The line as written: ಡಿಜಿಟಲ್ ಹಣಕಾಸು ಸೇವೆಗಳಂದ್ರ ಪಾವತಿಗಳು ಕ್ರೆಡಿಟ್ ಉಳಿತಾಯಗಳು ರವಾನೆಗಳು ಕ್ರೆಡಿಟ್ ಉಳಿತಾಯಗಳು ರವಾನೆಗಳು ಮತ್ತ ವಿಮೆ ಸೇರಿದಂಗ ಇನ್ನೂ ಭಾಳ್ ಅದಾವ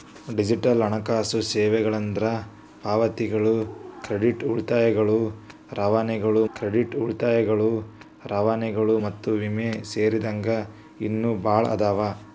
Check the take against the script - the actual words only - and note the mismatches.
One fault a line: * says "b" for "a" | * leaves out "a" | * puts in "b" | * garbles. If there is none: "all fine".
all fine